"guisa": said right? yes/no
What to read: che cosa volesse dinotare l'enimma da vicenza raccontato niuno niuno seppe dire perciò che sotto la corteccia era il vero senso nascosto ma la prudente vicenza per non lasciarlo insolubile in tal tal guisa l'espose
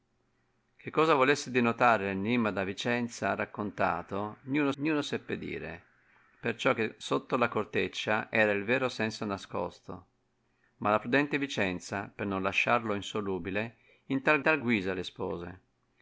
yes